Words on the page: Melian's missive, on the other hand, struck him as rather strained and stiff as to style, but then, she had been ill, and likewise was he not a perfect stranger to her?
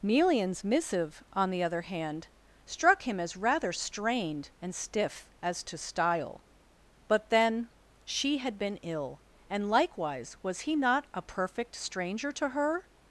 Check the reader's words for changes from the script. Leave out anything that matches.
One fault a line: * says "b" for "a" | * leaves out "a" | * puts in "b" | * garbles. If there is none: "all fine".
all fine